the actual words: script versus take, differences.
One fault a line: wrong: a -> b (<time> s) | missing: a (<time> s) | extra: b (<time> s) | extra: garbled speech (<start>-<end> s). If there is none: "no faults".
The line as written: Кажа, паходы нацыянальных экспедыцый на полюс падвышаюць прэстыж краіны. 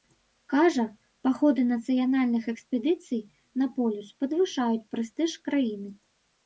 no faults